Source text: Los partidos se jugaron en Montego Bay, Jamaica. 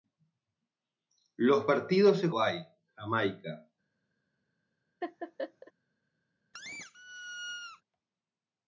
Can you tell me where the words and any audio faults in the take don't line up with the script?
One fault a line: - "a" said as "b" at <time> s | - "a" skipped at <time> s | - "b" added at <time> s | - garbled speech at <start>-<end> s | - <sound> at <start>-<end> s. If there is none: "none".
- "jugaron en Montego" skipped at 2.3 s
- laugh at 5.0-5.7 s
- squeak at 6.5-7.8 s